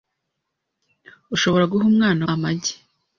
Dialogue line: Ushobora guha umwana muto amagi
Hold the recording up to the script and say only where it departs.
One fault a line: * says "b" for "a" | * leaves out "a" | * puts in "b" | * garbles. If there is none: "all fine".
* leaves out "muto"